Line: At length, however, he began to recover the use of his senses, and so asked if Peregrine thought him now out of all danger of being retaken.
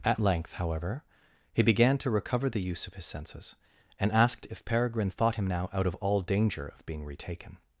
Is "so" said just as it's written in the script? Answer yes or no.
no